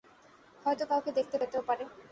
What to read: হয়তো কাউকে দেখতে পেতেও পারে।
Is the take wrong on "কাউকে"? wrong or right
right